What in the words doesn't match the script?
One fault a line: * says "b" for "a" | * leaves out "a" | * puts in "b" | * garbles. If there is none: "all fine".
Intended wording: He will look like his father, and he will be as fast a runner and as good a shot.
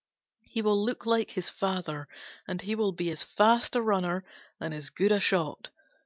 all fine